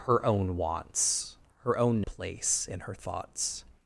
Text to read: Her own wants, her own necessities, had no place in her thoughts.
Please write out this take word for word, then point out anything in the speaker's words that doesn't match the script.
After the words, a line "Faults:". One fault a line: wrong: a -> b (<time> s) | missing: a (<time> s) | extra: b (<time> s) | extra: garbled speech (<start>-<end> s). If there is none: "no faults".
Her own wants, her own place in her thoughts.
Faults:
missing: necessities had no (2.0 s)